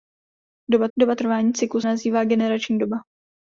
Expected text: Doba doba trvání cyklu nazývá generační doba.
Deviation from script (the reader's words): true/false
false